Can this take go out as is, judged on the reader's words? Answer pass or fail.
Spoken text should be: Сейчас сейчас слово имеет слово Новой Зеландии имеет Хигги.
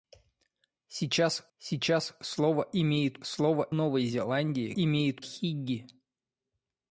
pass